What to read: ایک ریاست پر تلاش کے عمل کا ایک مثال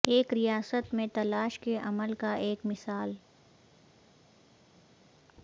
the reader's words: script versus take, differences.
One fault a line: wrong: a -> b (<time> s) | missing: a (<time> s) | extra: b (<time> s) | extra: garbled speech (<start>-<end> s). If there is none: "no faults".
wrong: پر -> میں (0.9 s)